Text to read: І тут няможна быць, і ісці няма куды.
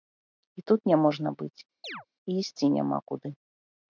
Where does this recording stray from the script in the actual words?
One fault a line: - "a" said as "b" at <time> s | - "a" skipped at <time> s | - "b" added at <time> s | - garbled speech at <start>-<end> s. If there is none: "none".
none